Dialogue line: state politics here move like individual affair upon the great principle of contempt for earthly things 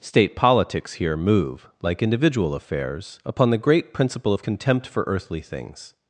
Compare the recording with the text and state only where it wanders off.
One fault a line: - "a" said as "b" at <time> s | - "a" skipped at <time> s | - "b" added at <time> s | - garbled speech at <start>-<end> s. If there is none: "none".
- "affair" said as "affairs" at 2.5 s